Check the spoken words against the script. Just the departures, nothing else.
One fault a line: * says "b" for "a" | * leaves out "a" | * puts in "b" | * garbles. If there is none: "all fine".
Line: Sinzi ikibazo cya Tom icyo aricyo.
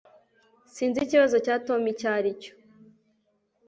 all fine